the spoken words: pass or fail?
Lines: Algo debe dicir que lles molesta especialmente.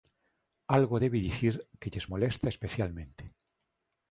pass